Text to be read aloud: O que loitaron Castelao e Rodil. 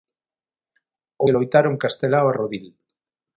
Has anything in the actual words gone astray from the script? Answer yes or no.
no